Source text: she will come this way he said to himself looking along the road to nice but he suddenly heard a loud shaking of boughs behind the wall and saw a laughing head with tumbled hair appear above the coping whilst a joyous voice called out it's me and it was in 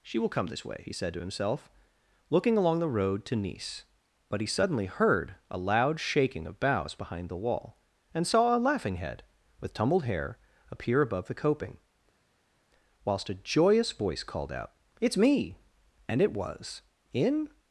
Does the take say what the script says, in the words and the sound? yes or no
yes